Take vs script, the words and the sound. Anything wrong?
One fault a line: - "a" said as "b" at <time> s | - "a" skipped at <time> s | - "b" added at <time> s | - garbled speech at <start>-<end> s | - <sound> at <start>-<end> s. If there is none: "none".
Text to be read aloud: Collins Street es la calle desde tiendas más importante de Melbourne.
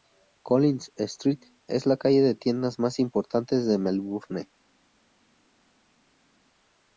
- "desde" said as "de" at 2.2 s